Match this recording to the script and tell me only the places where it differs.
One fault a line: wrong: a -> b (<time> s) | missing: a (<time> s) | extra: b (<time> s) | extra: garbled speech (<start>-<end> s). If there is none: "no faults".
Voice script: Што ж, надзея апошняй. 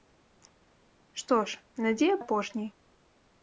no faults